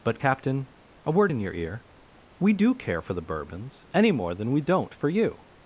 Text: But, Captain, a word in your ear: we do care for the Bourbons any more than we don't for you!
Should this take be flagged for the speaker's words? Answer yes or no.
no